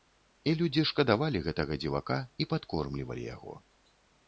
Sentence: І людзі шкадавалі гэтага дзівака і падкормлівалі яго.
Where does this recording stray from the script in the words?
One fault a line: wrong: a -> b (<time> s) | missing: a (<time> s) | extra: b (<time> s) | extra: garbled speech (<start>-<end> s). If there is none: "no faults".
no faults